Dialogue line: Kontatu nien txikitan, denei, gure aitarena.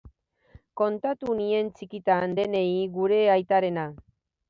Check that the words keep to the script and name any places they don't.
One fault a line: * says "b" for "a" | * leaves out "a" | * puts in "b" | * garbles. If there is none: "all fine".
all fine